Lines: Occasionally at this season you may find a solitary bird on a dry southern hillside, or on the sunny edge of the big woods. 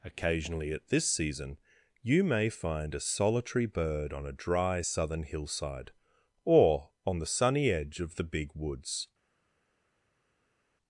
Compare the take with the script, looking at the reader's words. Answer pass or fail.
pass